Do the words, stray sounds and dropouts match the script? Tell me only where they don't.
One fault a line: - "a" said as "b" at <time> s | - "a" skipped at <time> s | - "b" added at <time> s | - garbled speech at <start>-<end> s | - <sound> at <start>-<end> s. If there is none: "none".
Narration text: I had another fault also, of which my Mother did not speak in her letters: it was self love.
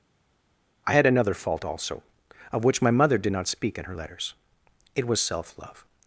none